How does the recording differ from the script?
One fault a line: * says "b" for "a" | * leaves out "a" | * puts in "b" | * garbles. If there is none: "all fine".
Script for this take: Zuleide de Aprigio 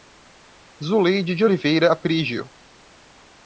* puts in "Oliveira"